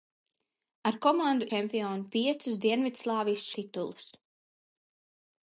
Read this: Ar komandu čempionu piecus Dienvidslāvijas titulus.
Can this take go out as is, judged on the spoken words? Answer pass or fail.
pass